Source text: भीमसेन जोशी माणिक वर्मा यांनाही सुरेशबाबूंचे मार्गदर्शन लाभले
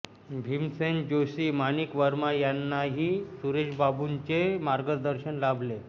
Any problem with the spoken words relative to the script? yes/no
no